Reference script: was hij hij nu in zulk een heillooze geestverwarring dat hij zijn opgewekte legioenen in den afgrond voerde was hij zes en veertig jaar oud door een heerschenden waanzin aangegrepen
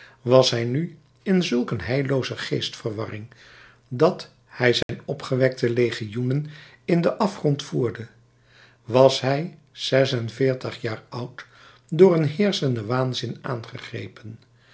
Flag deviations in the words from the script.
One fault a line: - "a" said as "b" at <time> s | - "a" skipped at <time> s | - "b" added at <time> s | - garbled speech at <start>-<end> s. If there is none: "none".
- "hij" skipped at 0.6 s